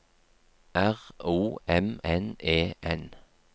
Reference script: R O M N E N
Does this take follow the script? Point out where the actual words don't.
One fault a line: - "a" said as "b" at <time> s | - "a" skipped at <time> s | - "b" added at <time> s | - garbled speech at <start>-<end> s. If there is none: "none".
none